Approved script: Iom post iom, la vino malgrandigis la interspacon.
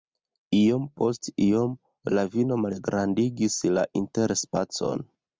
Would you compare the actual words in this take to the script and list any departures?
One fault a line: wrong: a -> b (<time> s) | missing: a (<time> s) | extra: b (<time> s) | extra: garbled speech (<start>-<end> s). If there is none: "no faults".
no faults